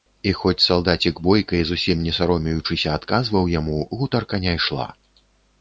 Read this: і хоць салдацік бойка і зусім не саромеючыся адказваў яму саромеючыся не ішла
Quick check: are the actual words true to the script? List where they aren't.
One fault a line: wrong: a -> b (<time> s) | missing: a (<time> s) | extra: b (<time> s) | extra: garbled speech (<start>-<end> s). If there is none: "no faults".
wrong: саромеючыся -> гутарка (4.0 s)